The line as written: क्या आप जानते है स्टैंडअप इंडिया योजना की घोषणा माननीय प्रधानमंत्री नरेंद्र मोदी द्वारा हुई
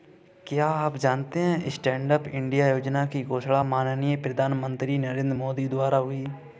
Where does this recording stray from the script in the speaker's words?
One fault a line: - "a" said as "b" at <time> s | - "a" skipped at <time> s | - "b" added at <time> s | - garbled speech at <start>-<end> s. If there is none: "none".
none